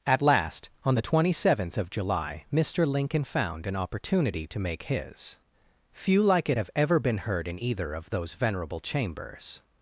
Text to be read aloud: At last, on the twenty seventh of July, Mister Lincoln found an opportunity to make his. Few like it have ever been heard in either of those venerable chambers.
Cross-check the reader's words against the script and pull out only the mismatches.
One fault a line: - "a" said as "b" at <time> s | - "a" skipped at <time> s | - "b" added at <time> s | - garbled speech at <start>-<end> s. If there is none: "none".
none